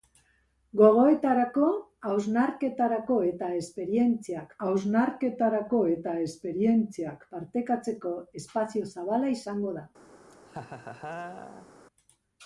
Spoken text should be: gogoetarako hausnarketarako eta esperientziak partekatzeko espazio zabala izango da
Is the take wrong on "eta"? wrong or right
right